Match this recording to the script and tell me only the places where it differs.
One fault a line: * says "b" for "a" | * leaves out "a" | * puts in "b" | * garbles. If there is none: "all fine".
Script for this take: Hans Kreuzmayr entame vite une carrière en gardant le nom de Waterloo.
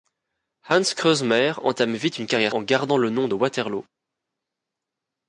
all fine